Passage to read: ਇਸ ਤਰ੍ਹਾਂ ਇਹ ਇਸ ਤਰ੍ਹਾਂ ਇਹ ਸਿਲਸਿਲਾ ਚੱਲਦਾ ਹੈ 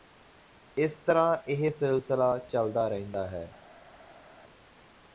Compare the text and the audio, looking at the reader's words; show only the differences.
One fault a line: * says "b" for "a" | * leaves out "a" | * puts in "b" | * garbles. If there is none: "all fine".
* leaves out "ਇਸ ਤਰ੍ਹਾਂ ਇਹ"
* puts in "ਰਹਿੰਦਾ"